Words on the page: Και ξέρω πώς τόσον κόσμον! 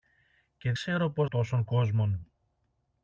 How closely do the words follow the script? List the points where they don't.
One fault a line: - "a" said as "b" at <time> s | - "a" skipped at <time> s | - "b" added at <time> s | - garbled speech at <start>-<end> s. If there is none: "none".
none